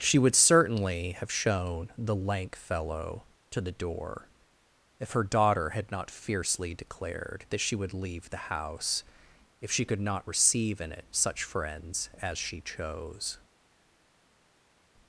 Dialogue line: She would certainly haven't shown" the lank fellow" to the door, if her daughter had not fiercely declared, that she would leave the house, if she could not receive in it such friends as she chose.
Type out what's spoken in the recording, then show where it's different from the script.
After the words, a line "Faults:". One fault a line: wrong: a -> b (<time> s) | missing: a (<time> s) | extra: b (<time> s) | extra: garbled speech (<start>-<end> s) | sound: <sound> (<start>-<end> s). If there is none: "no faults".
She would certainly have shown" the lank fellow" to the door, if her daughter had not fiercely declared, that she would leave the house, if she could not receive in it such friends as she chose.
Faults:
wrong: haven't -> have (1.1 s)